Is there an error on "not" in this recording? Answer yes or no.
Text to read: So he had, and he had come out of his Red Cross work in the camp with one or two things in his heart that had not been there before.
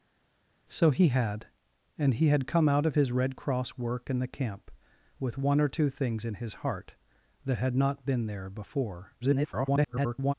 no